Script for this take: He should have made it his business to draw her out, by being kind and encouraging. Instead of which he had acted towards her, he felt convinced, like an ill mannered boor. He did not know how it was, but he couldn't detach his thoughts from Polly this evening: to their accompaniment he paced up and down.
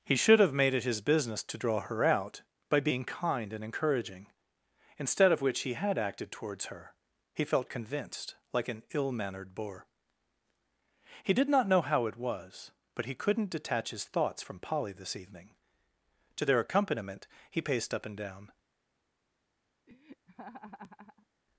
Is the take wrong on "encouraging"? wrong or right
right